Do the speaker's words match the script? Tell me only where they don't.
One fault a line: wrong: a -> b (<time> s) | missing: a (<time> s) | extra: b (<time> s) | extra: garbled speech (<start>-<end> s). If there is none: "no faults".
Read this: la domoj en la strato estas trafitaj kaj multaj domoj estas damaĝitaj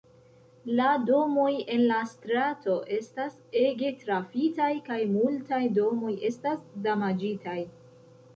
extra: ege (3.6 s)